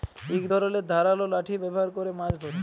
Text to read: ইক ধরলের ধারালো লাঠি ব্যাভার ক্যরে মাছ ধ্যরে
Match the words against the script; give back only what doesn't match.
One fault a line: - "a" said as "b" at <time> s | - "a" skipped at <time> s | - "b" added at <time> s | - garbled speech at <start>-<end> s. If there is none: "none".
none